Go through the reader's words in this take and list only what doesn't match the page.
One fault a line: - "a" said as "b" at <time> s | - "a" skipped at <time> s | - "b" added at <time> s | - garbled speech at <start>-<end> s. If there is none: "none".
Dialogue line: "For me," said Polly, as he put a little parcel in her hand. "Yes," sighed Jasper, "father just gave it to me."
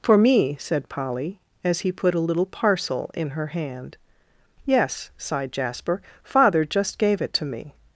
none